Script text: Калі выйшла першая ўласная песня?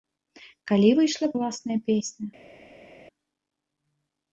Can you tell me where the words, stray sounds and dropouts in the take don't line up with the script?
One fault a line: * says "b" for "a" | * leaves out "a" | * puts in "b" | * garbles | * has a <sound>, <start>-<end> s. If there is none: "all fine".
* leaves out "першая"